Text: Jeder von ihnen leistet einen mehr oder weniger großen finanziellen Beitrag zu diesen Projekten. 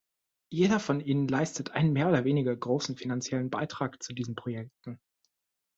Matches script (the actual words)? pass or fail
pass